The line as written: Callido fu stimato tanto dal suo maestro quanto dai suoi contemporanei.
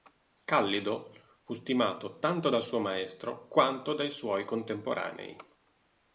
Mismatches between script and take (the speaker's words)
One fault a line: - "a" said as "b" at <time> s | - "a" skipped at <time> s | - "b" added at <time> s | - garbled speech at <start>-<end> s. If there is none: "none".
none